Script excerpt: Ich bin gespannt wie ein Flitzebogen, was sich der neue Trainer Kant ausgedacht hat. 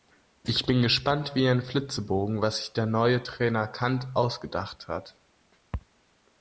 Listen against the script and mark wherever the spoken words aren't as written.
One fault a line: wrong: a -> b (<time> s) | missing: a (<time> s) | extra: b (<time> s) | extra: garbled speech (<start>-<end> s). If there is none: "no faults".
no faults